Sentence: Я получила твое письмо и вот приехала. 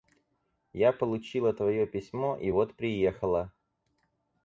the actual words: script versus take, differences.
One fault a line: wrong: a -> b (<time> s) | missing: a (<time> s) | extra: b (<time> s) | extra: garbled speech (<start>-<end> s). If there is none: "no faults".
no faults